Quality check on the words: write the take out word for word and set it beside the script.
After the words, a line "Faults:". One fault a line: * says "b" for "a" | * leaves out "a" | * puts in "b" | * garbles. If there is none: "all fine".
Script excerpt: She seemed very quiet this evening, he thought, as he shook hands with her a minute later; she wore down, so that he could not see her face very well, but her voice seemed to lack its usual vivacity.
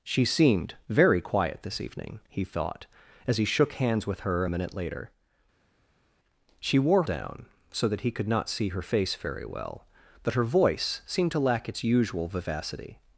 She seemed very quiet this evening, he thought, as he shook hands with her a minute later; she wore down, so that he could not see her face very well, but her voice seemed to lack its usual vivacity.
Faults:
all fine